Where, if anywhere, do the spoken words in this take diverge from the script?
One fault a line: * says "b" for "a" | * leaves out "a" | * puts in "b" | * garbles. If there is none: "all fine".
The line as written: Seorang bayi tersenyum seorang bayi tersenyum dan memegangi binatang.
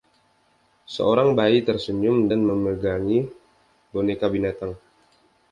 * leaves out "seorang bayi tersenyum"
* puts in "boneka"